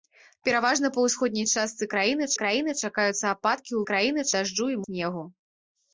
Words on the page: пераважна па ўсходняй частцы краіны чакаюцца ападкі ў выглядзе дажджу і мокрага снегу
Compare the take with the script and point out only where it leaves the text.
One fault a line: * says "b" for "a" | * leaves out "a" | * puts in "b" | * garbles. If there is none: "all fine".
* puts in "краіны"
* says "краіны" for "выглядзе"
* leaves out "мокрага"